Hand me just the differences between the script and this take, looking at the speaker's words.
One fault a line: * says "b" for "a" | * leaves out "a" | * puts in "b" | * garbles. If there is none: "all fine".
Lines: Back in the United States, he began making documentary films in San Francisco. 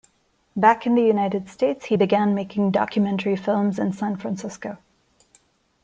all fine